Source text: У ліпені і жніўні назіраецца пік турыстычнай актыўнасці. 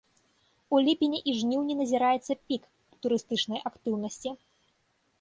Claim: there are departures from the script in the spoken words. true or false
false